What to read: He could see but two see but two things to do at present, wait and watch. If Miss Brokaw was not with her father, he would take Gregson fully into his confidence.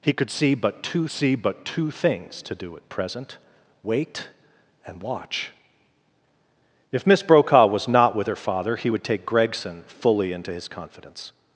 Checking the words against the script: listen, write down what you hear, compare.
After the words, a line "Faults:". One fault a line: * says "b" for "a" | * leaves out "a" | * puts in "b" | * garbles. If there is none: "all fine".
He could see but two see but two things to do at present, wait and watch. If Miss Brokaw was not with her father, he would take Gregson fully into his confidence.
Faults:
all fine